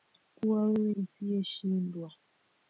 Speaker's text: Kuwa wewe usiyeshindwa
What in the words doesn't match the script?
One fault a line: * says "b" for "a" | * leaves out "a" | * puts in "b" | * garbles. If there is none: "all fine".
all fine